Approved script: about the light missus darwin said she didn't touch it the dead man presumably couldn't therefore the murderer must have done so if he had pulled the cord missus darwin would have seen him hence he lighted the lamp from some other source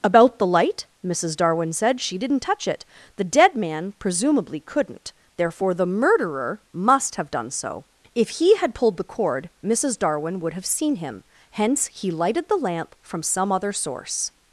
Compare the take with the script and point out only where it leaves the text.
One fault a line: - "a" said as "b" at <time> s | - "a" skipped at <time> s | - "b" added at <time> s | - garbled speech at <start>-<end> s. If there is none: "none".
none